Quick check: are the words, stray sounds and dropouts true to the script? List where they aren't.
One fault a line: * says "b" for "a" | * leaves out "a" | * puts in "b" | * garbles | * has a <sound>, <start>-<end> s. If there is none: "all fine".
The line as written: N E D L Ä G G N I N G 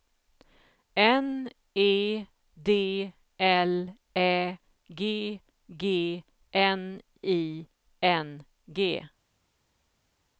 all fine